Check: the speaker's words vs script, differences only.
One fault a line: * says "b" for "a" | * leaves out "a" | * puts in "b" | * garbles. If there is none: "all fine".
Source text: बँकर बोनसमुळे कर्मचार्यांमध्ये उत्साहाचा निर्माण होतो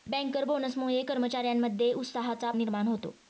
all fine